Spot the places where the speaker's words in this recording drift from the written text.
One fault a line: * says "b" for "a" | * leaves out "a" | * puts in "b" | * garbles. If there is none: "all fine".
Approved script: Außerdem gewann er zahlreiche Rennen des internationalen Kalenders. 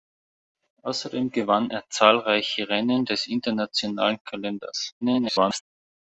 * garbles